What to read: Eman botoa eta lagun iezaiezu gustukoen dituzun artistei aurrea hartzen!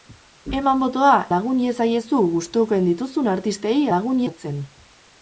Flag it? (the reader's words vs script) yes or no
yes